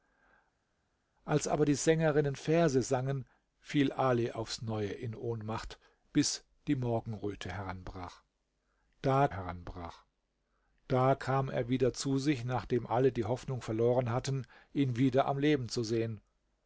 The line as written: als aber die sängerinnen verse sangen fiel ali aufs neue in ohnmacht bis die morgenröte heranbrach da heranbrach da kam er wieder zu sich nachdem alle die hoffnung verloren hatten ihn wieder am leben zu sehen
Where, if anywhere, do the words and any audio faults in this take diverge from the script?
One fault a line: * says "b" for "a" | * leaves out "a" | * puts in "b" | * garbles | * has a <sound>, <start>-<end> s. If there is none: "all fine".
all fine